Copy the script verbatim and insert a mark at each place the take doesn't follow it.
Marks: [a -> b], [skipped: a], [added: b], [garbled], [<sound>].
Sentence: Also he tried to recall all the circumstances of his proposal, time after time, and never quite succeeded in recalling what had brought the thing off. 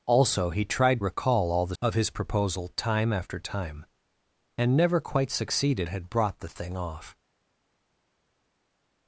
Also he tried [skipped: to] recall all the [skipped: circumstances] of his proposal, time after time, and never quite succeeded [skipped: in recalling what] had brought the thing off.